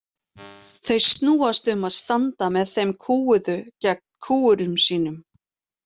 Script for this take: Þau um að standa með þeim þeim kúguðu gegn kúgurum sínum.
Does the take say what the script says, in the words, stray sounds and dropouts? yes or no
no